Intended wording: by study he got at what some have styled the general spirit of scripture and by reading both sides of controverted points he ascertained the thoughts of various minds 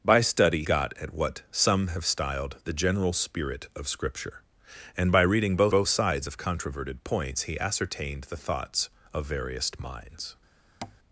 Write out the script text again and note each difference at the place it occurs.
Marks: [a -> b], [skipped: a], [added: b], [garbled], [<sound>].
by study [skipped: he] got at what some have styled the general spirit of scripture and by reading both [added: both] sides of controverted points he ascertained the thoughts of various minds [tap]